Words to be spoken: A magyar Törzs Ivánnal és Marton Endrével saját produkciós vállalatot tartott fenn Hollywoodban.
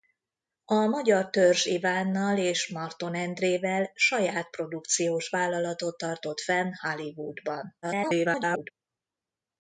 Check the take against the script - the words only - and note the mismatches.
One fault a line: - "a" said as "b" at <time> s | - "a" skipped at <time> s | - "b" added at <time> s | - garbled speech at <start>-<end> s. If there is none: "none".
- garbled speech at 7.8-8.7 s